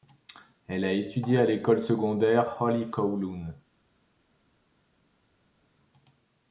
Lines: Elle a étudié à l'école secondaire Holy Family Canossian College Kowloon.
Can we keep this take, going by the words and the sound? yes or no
no